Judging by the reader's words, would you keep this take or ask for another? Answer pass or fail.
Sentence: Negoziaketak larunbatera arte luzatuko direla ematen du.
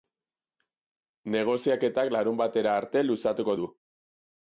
fail